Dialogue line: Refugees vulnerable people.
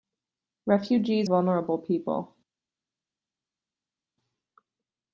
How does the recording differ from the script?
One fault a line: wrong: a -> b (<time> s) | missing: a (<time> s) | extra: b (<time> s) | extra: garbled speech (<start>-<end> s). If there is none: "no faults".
no faults